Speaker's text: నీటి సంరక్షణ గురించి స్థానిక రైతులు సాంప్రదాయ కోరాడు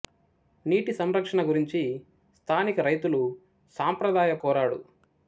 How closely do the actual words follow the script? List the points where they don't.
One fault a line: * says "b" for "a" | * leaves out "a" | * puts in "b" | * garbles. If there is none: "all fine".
all fine